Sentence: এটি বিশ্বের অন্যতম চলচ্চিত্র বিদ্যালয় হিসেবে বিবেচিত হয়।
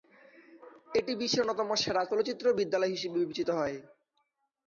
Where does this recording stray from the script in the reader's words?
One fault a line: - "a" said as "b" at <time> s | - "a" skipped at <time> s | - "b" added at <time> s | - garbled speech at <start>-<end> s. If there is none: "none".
- "সেরা" added at 1.8 s